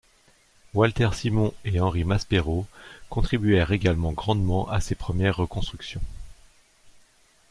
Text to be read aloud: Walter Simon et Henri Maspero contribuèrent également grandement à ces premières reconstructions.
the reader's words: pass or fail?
pass